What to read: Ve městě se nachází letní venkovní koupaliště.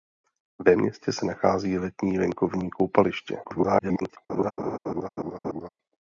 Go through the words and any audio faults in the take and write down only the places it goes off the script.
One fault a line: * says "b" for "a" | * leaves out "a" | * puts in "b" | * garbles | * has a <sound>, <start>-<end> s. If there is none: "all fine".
* garbles
* has a laugh, 4.3-5.7 s